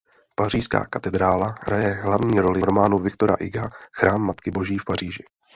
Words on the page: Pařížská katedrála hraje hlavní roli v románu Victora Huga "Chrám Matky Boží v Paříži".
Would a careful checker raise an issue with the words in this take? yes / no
yes